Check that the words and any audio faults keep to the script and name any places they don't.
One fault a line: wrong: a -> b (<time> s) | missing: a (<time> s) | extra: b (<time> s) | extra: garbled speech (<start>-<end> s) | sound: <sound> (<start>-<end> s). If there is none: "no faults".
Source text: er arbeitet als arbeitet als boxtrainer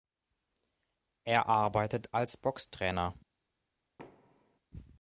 missing: arbeitet als (2.4 s)
sound: thud (4.0-4.6 s)